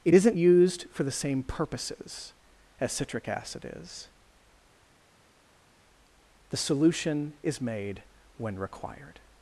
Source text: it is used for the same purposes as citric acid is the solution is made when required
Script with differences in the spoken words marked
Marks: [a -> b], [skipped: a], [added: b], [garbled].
it [is -> isn't] used for the same purposes as citric acid is the solution is made when required